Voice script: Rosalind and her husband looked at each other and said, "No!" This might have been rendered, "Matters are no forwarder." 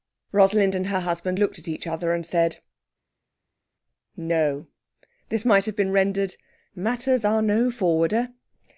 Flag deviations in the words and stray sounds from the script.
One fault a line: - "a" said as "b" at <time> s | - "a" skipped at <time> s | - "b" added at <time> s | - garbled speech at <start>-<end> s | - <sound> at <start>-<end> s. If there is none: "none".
none